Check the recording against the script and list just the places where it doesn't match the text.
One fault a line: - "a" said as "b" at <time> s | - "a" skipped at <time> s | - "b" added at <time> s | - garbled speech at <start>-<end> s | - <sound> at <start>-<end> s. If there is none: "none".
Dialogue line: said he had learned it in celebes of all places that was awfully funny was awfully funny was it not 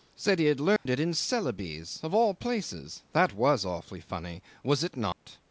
- dropout at 0.8-0.9 s
- "awfully funny was" skipped at 4.8 s
- dropout at 5.1-5.3 s